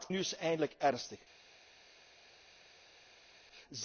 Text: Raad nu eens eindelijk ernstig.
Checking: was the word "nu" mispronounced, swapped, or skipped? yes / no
no